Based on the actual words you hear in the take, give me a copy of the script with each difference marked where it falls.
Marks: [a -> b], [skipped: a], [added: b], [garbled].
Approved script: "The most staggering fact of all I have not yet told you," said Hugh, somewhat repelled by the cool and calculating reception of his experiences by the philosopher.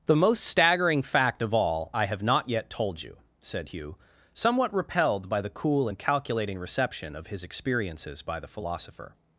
"The most staggering fact of all I have not yet told you," said Hugh, somewhat repelled by the cool and calculating reception of his experiences by the philosopher.